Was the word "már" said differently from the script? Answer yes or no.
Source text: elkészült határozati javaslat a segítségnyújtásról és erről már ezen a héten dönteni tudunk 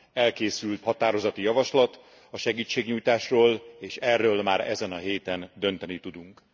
no